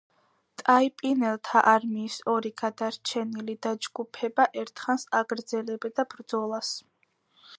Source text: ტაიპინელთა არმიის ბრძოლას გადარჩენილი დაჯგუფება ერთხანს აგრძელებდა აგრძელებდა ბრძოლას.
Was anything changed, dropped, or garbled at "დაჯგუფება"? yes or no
no